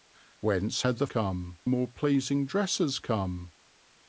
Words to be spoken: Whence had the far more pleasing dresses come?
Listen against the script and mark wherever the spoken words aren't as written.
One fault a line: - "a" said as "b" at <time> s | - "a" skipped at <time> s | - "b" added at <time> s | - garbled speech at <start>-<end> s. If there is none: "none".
- "far" said as "come" at 1.0 s